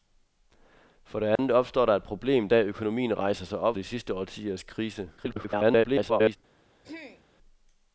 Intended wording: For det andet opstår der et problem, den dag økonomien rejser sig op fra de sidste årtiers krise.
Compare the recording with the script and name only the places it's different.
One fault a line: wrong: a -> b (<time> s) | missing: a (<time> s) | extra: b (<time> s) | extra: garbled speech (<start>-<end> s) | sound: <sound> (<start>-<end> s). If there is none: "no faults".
sound: dropout (1.4-1.4 s)
missing: den (2.5 s)
missing: fra (3.8 s)
extra: garbled speech (5.2-6.4 s)
sound: throat clearing (6.8-7.2 s)